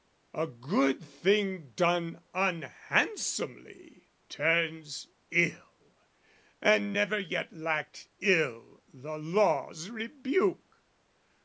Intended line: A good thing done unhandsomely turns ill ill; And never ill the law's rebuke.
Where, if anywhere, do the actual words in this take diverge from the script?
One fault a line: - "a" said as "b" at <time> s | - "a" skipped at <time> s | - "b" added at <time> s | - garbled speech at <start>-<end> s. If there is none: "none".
- "ill" skipped at 5.9 s
- "yet lacked" added at 7.2 s